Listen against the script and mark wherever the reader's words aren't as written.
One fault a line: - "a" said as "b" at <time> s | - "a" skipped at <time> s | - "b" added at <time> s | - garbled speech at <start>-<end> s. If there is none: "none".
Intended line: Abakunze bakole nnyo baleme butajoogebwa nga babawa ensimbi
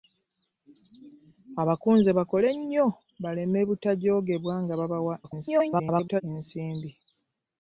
- garbled speech at 5.2-6.2 s